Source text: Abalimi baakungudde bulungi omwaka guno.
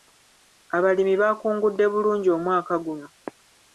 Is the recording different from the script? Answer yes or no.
no